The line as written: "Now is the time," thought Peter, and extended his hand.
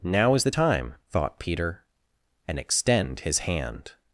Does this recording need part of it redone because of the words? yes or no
yes